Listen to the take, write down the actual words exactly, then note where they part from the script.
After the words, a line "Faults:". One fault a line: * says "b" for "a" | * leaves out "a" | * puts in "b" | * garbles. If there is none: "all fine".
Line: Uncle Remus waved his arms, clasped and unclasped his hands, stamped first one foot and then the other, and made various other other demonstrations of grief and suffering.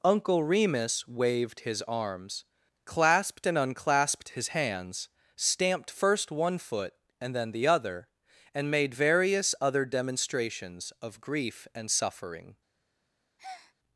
Uncle Remus waved his arms, clasped and unclasped his hands, stamped first one foot and then the other, and made various other demonstrations of grief and suffering.
Faults:
* leaves out "other"